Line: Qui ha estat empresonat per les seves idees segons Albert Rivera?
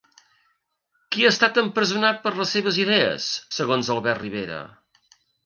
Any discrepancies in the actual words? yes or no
no